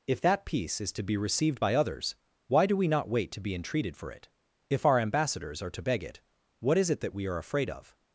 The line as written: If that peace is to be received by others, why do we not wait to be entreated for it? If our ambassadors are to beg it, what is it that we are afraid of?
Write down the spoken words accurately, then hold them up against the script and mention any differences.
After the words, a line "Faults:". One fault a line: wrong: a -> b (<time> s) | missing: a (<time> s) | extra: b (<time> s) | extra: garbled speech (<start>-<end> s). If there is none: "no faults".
If that peace is to be received by others, why do we not wait to be entreated for it? If our ambassadors are to beg it, what is it that we are afraid of?
Faults:
no faults